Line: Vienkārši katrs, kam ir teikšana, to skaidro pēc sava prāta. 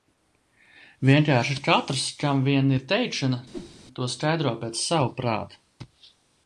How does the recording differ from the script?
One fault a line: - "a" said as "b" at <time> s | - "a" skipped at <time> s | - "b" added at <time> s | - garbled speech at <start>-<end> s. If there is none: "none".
- "vien" added at 2.5 s